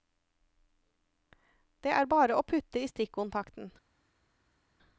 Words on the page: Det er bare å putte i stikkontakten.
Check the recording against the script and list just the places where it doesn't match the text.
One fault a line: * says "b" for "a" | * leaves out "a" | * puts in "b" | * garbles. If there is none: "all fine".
all fine